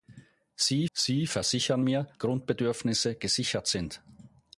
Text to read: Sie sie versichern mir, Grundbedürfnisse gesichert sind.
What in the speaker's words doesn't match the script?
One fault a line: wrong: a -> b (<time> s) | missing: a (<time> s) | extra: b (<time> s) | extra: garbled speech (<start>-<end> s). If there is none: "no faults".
no faults